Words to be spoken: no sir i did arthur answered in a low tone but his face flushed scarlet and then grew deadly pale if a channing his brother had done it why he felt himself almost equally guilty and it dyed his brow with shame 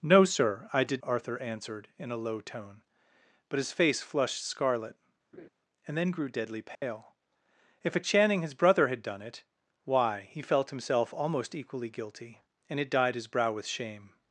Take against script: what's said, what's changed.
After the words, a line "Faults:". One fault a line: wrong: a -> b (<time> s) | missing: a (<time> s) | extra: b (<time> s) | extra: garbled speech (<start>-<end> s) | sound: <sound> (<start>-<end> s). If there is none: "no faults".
no sir i did arthur answered in a low tone but his face flushed scarlet and then grew deadly pale if a channing his brother had done it why he felt himself almost equally guilty and it dyed his brow with shame
Faults:
sound: laugh (5.3-5.5 s)
sound: dropout (6.7-6.8 s)